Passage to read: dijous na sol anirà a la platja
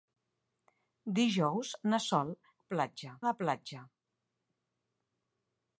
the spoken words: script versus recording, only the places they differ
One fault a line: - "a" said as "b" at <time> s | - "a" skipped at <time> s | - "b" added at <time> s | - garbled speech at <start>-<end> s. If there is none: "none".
- "anirà" said as "platja" at 2.8 s